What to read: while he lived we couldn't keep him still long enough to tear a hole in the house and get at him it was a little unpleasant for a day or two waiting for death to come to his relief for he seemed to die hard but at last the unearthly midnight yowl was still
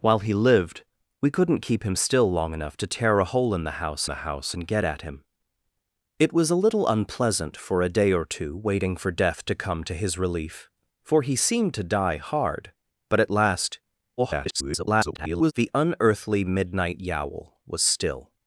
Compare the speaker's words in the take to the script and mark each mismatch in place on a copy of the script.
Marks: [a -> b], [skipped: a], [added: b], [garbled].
while he lived we couldn't keep him still long enough to tear a hole in the house [added: the house] and get at him it was a little unpleasant for a day or two waiting for death to come to his relief for he seemed to die hard but at last [garbled] the unearthly midnight yowl was still